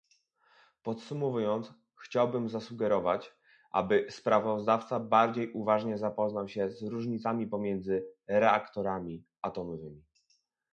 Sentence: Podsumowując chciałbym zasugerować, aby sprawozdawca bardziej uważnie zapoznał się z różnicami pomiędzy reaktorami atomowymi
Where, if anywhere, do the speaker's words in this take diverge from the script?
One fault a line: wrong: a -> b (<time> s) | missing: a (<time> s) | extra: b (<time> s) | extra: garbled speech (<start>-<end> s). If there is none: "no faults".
no faults